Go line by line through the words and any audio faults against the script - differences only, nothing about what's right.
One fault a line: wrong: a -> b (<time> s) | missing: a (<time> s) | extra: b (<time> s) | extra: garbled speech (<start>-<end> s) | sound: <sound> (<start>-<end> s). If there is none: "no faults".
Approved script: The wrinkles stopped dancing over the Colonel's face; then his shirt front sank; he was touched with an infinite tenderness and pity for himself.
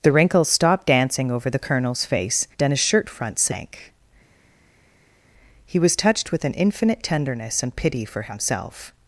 no faults